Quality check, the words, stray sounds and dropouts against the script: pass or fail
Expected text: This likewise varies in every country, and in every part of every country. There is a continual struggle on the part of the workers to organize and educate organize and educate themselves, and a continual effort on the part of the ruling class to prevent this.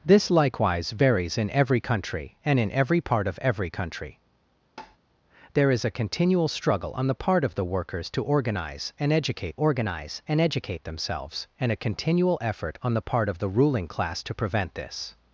fail